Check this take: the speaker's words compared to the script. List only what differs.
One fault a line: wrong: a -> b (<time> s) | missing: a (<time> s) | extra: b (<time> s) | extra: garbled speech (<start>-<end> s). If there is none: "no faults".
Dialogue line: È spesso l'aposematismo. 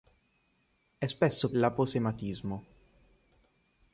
no faults